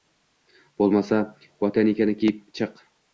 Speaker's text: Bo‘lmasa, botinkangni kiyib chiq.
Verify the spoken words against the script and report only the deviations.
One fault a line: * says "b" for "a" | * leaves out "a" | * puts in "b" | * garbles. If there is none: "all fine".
all fine